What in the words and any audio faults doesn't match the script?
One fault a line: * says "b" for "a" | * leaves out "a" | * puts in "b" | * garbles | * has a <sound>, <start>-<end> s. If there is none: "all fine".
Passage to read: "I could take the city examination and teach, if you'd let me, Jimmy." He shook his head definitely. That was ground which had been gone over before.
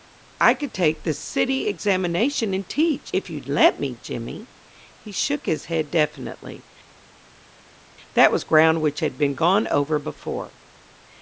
all fine